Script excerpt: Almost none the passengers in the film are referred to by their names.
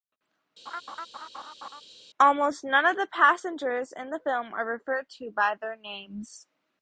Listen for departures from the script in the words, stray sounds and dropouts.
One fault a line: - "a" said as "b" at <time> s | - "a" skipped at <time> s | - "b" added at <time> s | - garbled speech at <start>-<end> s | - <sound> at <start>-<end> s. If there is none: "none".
- laugh at 0.7-1.8 s
- "of" added at 2.9 s